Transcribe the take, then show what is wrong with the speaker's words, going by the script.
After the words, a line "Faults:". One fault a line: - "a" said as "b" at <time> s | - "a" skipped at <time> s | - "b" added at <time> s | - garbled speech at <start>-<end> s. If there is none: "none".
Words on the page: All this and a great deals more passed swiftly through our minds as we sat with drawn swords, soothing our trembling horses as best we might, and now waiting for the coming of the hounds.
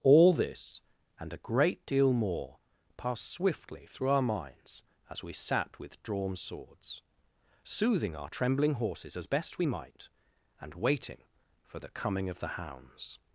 All this and a great deal more passed swiftly through our minds as we sat with drawn swords, soothing our trembling horses as best we might, and waiting for the coming of the hounds.
Faults:
- "deals" said as "deal" at 1.9 s
- "now" skipped at 10.7 s